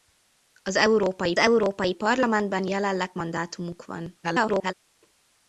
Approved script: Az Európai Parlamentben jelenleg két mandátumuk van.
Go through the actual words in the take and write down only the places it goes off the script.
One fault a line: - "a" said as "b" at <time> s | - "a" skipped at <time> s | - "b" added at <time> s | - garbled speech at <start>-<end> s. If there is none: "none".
- "Európai" added at 1.4 s
- "két" skipped at 3.1 s
- garbled speech at 4.2-4.7 s